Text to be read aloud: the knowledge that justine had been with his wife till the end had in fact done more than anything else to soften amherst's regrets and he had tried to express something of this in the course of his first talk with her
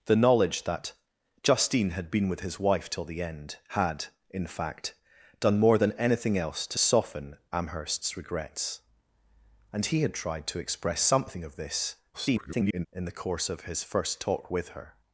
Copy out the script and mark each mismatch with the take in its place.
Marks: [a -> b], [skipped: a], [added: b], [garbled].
the knowledge that justine had been with his wife till the end had in fact done more than anything else to soften amherst's regrets and he had tried to express something of this [garbled] in the course of his first talk with her